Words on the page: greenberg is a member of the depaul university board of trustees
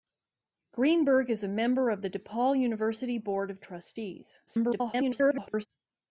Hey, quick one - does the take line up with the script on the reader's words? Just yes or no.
no